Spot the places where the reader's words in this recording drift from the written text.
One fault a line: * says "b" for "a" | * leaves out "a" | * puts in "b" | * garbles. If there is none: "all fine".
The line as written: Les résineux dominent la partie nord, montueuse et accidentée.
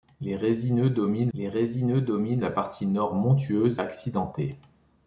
* puts in "les résineux dominent"
* leaves out "et"